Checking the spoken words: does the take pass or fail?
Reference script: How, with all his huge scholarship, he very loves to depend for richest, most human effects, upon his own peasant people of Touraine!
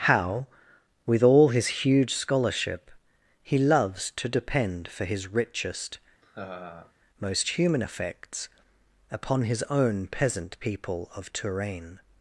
fail